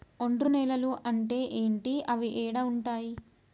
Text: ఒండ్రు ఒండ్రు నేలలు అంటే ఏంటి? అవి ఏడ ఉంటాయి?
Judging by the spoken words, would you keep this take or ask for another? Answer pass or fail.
fail